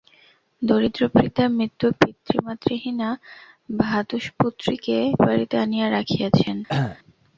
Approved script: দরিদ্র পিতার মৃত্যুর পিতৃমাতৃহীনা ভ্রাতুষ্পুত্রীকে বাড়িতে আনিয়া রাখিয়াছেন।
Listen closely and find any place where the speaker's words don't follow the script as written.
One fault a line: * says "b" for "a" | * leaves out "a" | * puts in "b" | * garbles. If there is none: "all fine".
all fine